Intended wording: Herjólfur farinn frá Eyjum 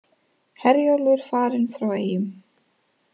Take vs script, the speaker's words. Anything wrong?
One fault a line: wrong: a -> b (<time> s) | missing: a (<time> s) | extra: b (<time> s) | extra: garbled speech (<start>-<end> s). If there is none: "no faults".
no faults